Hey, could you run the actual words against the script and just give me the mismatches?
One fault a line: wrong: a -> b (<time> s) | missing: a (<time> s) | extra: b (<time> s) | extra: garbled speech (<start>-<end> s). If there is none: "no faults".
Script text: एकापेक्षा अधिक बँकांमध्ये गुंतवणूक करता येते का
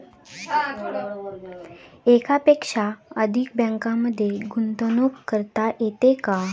no faults